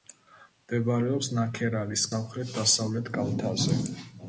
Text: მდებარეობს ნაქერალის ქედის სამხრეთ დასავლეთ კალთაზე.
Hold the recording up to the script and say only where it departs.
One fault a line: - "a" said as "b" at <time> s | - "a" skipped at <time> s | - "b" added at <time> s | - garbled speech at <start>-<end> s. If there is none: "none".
- "ქედის" skipped at 2.1 s